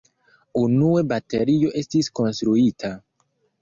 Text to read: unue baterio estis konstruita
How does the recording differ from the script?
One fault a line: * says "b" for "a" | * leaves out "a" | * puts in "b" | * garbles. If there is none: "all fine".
all fine